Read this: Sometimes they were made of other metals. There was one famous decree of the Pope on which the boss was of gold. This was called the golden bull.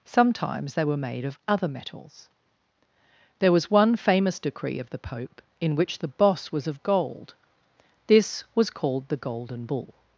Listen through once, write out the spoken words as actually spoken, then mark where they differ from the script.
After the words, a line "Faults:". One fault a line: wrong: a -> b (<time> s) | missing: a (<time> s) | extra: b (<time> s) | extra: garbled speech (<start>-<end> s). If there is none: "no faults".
Sometimes they were made of other metals. There was one famous decree of the Pope in which the boss was of gold. This was called the golden bull.
Faults:
wrong: on -> in (5.6 s)